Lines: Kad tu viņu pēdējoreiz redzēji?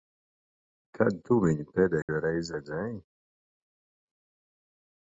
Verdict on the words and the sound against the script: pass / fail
fail